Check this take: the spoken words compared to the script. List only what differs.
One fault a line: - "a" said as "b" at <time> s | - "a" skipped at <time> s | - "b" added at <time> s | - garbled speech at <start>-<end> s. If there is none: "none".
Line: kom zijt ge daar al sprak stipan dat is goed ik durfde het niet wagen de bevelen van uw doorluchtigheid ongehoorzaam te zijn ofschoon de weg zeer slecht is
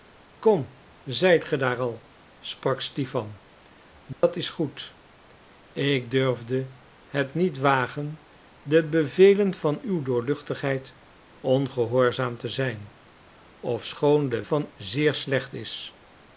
- "weg" said as "van" at 14.4 s